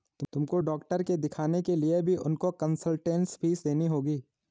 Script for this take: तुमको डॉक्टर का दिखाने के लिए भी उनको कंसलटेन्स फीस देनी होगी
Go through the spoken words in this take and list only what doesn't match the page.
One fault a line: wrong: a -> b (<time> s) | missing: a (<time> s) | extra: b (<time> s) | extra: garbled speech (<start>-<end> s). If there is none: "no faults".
wrong: का -> के (1.0 s)